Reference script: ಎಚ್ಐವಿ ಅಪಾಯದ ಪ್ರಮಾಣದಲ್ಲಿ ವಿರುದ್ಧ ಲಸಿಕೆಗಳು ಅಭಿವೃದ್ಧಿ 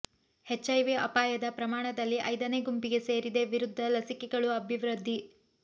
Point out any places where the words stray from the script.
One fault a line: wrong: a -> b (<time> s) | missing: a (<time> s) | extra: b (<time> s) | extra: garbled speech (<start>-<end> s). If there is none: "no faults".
extra: ಐದನೇ ಗುಂಪಿಗೆ ಸೇರಿದೆ (2.3 s)